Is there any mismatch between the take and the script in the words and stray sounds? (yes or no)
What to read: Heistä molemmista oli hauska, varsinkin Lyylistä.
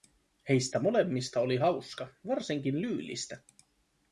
no